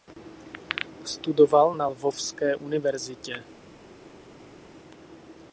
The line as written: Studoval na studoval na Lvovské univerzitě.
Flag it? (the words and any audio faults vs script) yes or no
yes